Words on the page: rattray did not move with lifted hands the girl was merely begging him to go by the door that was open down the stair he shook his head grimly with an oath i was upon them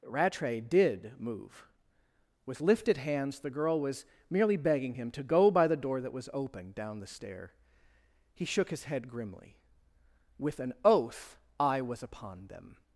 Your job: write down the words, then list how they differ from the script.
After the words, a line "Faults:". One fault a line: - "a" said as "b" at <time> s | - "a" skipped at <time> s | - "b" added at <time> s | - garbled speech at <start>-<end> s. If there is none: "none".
rattray did move with lifted hands the girl was merely begging him to go by the door that was open down the stair he shook his head grimly with an oath i was upon them
Faults:
- "not" skipped at 1.1 s